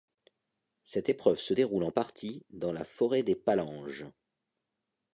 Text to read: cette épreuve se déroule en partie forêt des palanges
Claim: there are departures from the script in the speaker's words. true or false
true